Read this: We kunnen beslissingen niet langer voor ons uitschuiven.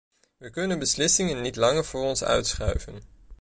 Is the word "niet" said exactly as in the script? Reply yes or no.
yes